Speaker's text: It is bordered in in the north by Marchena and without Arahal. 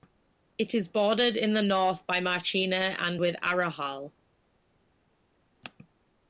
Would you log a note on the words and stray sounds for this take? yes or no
yes